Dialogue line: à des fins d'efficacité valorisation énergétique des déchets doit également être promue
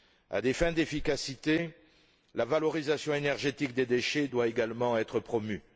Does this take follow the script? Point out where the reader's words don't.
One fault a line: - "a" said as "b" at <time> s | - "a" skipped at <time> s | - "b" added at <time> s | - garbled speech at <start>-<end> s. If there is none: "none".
- "la" added at 2.3 s